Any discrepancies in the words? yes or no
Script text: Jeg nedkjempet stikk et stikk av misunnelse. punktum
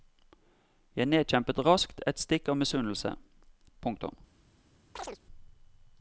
yes